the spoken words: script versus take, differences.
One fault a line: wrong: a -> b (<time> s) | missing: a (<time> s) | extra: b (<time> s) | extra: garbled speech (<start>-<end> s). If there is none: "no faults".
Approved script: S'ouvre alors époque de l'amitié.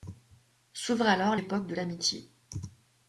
no faults